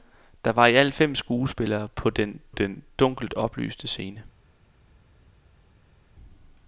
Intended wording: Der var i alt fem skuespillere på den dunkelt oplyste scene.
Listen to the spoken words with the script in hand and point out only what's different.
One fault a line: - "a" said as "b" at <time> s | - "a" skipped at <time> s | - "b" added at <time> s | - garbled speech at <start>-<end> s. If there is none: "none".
- "den" added at 2.5 s